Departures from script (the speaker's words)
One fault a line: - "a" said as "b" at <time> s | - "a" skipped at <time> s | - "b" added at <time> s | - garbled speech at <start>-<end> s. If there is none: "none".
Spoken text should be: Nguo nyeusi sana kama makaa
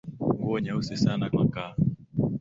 - "kama" skipped at 1.3 s